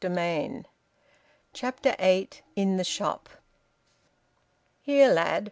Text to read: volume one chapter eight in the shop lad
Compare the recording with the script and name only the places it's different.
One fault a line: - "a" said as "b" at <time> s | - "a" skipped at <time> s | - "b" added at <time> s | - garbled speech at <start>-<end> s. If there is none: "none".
- "here" added at 4.8 s